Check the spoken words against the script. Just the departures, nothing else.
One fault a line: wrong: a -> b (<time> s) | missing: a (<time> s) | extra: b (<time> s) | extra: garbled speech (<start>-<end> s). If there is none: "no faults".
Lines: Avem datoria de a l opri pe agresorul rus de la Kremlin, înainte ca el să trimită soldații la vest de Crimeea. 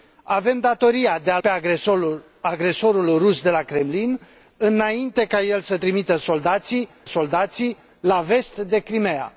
missing: opri (1.4 s)
extra: soldații (7.0 s)